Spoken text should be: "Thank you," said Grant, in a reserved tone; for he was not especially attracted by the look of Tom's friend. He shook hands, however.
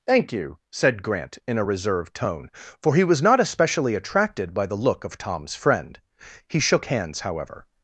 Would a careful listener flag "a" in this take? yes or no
no